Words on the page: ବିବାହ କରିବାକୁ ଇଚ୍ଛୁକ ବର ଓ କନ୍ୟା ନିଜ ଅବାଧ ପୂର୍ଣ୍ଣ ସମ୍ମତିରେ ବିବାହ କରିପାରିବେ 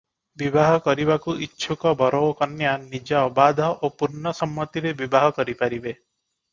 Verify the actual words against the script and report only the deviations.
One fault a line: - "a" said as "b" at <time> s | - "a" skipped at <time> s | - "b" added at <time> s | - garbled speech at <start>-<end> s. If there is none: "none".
- "ଓ" added at 3.8 s